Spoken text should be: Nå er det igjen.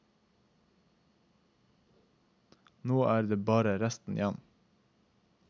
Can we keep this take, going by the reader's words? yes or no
no